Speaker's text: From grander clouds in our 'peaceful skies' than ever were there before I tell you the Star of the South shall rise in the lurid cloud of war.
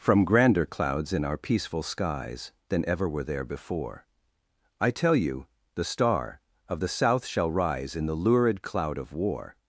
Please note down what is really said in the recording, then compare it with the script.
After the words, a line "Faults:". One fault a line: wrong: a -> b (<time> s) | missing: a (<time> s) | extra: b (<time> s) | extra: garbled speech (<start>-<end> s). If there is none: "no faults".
From grander clouds in our 'peaceful skies' than ever were there before I tell you the Star of the South shall rise in the lurid cloud of war.
Faults:
no faults